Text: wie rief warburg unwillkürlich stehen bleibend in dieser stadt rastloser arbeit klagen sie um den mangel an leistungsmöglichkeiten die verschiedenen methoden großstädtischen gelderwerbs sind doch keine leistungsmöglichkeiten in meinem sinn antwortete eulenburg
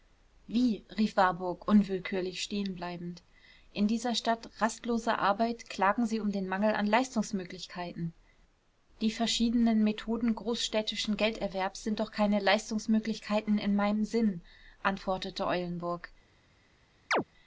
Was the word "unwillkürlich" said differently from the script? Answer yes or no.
no